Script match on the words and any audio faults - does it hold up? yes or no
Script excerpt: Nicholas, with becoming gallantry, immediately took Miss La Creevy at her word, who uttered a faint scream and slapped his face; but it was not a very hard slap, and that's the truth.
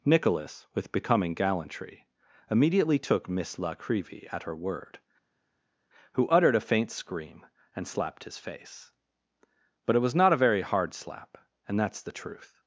yes